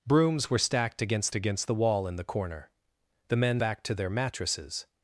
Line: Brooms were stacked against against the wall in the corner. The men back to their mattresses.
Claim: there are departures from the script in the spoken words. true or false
false